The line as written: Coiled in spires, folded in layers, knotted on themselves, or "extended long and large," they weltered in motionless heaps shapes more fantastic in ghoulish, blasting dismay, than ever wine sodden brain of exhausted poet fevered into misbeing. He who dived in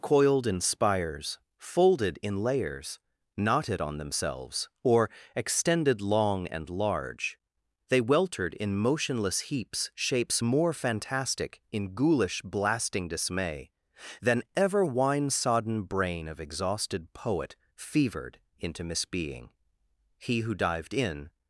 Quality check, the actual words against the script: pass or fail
pass